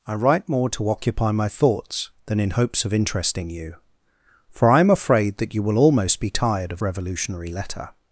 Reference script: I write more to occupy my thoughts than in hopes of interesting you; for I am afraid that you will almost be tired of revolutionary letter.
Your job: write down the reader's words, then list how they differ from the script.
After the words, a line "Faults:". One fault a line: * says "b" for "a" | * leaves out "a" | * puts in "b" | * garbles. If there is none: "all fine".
I write more to occupy my thoughts than in hopes of interesting you; for I am afraid that you will almost be tired of revolutionary letter.
Faults:
all fine